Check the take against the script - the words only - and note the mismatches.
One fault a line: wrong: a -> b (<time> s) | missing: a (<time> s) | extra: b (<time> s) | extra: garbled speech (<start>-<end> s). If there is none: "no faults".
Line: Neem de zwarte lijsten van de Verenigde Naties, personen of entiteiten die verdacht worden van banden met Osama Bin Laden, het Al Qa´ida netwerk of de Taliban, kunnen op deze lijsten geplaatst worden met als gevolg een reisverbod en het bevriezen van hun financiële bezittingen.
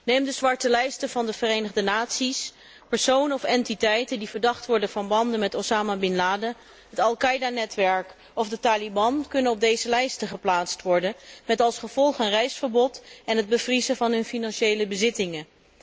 no faults